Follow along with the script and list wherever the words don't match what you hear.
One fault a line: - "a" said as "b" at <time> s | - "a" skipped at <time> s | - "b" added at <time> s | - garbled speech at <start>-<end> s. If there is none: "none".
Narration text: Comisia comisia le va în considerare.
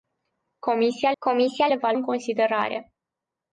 none